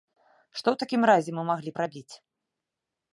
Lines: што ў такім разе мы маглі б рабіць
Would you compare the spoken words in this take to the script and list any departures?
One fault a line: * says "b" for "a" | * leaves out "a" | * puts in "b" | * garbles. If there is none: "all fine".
all fine